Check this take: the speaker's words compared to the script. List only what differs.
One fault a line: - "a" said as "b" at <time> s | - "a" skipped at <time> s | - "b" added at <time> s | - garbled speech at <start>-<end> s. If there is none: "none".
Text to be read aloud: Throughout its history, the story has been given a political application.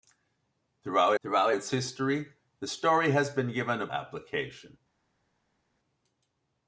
- "throughout" added at 1.2 s
- "political" skipped at 3.9 s